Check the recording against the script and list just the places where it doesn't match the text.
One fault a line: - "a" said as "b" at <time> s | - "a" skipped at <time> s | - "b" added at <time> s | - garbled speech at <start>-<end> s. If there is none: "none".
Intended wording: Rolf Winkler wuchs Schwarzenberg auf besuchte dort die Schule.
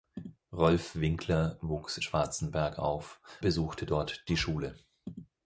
none